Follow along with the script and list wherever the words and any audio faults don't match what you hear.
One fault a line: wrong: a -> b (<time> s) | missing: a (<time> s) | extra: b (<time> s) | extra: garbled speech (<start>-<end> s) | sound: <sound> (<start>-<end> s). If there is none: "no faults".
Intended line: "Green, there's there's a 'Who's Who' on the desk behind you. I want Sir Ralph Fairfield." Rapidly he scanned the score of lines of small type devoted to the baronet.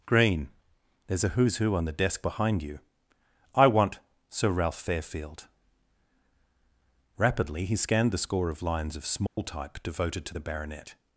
missing: there's (1.2 s)
sound: dropout (9.3-9.4 s)